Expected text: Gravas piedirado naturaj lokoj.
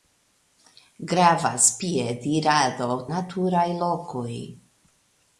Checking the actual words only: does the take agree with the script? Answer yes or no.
yes